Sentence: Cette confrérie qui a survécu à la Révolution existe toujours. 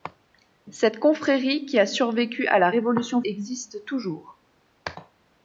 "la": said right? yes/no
yes